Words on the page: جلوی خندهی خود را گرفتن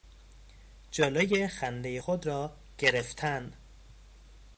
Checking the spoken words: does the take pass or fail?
pass